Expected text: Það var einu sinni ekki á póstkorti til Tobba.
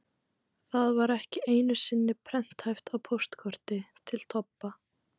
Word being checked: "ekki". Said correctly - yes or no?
no